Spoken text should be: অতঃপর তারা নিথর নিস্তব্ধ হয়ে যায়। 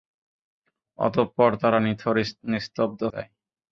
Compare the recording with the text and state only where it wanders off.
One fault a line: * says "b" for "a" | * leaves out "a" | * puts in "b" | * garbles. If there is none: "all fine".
* leaves out "হয়ে"